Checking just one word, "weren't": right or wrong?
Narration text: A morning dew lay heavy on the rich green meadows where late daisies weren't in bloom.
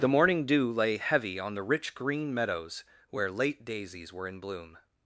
wrong